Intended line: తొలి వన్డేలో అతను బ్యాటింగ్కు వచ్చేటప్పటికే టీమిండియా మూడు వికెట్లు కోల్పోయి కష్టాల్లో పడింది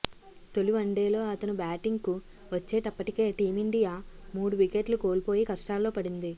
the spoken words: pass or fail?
pass